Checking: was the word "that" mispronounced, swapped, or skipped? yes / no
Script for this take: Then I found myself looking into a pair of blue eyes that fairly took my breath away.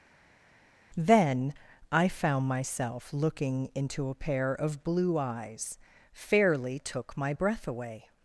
yes